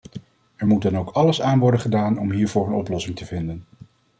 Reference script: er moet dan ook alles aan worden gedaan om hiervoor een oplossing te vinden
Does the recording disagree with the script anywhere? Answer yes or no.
no